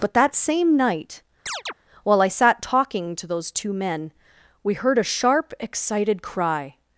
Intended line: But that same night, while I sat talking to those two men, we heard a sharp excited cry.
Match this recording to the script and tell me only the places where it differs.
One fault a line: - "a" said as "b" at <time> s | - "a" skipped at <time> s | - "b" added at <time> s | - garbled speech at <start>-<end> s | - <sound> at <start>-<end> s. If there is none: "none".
- chirp at 1.5-1.7 s